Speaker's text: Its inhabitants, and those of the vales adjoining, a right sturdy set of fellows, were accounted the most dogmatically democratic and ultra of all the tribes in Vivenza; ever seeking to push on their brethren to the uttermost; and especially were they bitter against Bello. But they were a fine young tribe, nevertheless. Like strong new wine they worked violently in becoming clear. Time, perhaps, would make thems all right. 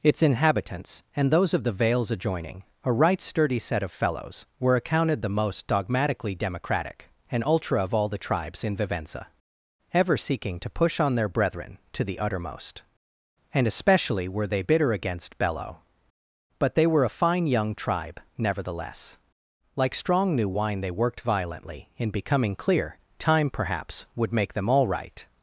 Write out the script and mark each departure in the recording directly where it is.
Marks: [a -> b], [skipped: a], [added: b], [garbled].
Its inhabitants, and those of the vales adjoining, a right sturdy set of fellows, were accounted the most dogmatically democratic and ultra of all the tribes in Vivenza; ever seeking to push on their brethren to the uttermost; and especially were they bitter against Bello. But they were a fine young tribe, nevertheless. Like strong new wine they worked violently in becoming clear. Time, perhaps, would make [thems -> them] all right.